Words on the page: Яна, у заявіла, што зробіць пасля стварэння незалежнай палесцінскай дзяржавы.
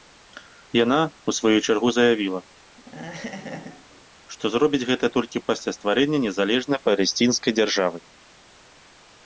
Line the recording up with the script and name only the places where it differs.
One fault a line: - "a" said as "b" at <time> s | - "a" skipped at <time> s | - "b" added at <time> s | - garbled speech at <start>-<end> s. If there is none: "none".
- "сваю чаргу" added at 1.4 s
- "гэта толькі" added at 4.9 s